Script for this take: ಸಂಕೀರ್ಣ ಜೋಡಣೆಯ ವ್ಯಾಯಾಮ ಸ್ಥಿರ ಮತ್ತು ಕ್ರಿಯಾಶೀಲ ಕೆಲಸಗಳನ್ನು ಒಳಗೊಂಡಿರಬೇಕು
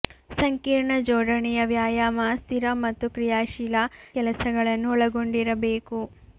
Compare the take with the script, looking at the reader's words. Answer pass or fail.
pass